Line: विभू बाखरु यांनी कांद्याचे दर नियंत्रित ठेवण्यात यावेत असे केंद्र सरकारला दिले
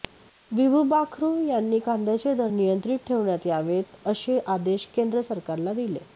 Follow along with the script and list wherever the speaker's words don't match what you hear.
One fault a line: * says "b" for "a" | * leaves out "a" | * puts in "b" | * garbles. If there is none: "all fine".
* puts in "आदेश"